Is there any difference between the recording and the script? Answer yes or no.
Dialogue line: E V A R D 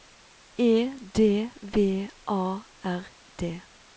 yes